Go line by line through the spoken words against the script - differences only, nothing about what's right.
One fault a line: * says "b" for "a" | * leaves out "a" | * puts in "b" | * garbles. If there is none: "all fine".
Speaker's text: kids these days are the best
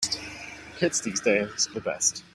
* leaves out "are"